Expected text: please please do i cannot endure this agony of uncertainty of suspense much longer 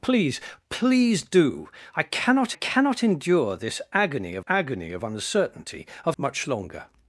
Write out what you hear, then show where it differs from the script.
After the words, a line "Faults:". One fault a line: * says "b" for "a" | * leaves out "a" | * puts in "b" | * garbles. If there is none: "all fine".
please please do i cannot cannot endure this agony of agony of uncertainty of much longer
Faults:
* puts in "cannot"
* puts in "agony of"
* leaves out "suspense"